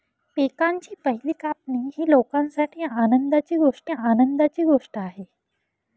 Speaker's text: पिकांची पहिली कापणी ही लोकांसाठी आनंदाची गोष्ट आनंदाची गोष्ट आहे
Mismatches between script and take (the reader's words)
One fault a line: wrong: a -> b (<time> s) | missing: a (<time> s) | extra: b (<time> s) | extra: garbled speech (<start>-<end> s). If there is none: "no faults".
no faults